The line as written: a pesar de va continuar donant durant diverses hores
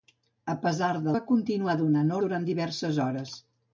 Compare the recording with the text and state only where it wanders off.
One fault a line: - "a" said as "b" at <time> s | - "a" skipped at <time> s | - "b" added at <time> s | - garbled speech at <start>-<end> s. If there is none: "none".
none